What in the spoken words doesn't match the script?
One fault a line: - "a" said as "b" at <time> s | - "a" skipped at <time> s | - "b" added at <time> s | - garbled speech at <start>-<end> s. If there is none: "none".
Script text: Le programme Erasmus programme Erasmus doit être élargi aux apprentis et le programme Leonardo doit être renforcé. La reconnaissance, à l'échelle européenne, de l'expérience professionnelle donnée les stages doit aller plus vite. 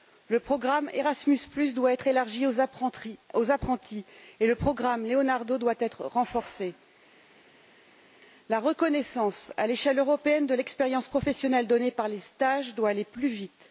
- "programme Erasmus" skipped at 1.4 s
- "par" added at 11.9 s